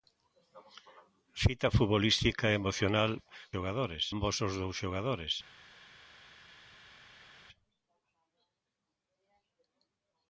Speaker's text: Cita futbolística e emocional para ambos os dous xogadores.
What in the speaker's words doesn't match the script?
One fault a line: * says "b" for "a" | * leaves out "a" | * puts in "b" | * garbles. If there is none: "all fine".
* says "xogadores" for "para"